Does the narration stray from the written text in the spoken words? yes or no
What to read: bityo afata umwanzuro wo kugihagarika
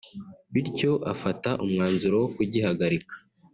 no